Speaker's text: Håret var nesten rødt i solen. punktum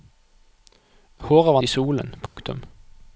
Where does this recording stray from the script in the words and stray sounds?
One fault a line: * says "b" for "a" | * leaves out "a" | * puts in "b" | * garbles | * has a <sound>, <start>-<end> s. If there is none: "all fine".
* leaves out "nesten rødt"
* has a dropout, 2.3-2.4 s